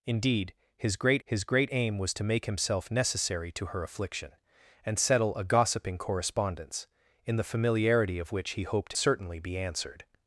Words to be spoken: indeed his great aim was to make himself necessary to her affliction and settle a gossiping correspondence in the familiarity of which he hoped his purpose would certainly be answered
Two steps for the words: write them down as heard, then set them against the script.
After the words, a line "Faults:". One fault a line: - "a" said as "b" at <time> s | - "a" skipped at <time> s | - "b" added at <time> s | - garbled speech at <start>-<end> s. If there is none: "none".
indeed his great his great aim was to make himself necessary to her affliction and settle a gossiping correspondence in the familiarity of which he hoped certainly be answered
Faults:
- "his great" added at 1.2 s
- "his purpose would" skipped at 8.9 s